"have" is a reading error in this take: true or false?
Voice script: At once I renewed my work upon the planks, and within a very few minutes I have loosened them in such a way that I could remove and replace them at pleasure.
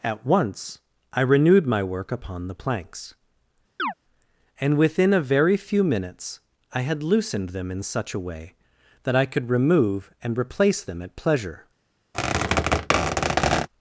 true